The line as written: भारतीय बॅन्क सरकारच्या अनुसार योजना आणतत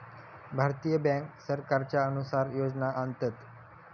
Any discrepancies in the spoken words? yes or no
no